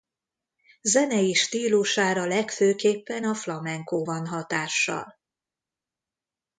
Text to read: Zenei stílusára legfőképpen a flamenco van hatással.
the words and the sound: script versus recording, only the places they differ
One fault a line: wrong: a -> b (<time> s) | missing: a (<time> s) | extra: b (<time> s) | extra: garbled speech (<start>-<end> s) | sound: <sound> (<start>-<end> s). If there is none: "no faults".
no faults